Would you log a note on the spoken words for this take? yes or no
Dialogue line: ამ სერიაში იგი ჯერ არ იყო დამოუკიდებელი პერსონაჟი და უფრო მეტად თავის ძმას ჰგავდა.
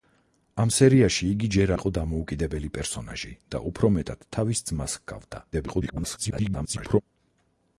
yes